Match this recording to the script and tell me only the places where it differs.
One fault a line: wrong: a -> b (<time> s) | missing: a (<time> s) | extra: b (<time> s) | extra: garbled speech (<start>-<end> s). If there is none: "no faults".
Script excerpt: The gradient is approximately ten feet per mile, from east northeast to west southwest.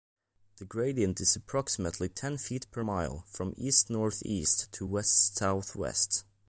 no faults